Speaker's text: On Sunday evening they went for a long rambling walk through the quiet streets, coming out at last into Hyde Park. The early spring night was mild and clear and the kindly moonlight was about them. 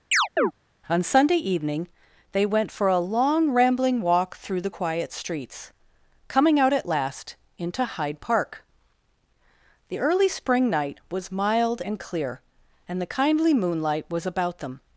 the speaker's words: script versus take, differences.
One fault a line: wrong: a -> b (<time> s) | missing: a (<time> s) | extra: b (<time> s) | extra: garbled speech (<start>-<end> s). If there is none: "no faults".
no faults